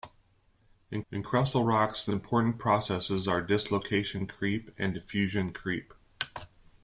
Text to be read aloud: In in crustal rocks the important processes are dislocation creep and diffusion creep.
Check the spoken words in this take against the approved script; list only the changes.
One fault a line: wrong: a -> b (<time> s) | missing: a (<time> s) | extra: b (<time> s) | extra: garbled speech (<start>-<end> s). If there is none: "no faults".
no faults